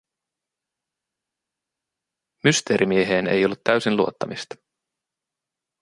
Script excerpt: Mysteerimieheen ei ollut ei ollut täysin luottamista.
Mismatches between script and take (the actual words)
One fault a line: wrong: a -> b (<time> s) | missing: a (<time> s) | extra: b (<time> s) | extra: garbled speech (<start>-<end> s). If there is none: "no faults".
missing: ei ollut (3.6 s)